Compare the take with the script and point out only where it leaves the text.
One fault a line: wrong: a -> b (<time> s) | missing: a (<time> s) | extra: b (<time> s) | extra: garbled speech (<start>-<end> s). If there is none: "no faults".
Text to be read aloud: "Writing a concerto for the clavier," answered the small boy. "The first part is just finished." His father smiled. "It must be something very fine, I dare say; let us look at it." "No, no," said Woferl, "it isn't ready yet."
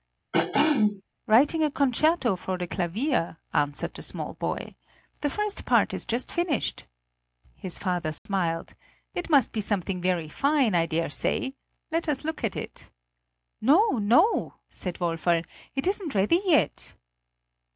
no faults